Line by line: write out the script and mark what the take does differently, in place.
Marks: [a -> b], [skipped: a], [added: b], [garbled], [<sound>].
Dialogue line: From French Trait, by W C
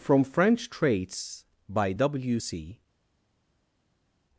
From French [Trait, -> Traits] by W C